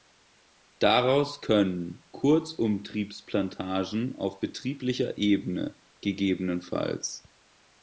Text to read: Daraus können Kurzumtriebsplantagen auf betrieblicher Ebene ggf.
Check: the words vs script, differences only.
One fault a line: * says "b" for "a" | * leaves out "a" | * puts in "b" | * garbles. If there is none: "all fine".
all fine